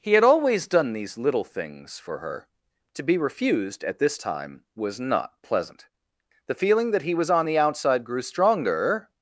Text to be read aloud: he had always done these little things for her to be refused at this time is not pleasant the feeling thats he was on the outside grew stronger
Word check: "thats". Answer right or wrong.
wrong